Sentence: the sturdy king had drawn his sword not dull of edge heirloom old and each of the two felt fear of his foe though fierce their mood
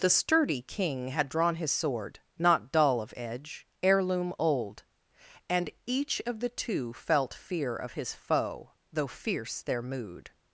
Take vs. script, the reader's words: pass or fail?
pass